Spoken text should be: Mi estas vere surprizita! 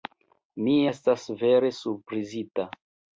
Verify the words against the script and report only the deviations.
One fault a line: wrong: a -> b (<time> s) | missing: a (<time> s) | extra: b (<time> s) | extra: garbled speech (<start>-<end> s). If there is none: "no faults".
no faults